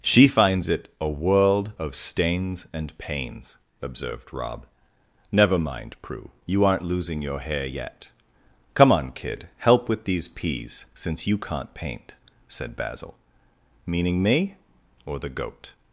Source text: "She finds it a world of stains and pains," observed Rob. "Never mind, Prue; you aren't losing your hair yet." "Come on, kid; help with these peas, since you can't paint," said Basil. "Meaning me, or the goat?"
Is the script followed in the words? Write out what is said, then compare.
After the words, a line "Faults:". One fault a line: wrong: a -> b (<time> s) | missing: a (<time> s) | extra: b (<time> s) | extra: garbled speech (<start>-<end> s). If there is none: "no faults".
"She finds it a world of stains and pains," observed Rob. "Never mind, Prue; you aren't losing your hair yet." "Come on, kid; help with these peas, since you can't paint," said Basil. "Meaning me, or the goat?"
Faults:
no faults